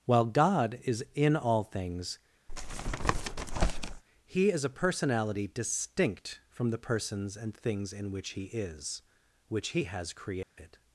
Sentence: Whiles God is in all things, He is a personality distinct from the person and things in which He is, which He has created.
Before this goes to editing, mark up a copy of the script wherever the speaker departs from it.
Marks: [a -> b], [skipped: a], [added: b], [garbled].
[Whiles -> While] God is in all things, He is a personality distinct from the [person -> persons] and things in which He is, which He has created.